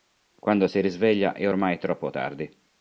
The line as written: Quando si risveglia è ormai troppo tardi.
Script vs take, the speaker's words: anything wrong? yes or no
no